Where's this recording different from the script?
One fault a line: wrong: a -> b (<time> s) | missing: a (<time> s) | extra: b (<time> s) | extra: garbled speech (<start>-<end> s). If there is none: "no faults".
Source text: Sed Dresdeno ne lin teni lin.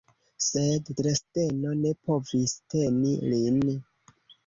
wrong: lin -> povis (2.1 s)